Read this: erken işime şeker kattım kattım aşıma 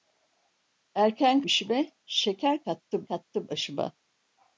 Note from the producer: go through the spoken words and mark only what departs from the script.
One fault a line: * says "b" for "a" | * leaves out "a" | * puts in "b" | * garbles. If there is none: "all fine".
all fine